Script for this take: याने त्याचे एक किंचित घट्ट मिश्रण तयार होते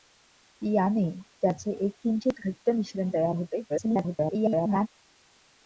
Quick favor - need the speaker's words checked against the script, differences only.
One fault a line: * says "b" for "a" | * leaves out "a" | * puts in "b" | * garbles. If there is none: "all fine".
* garbles